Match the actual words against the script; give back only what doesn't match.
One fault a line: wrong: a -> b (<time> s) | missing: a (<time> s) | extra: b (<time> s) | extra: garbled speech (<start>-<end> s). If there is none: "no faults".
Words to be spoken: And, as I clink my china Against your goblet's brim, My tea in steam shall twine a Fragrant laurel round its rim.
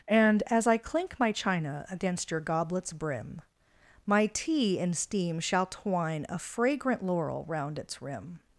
no faults